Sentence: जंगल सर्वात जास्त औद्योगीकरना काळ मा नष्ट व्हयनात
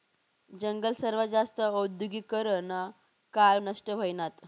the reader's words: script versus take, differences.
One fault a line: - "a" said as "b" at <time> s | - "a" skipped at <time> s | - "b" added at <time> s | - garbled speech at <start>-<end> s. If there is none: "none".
- "मा" skipped at 3.6 s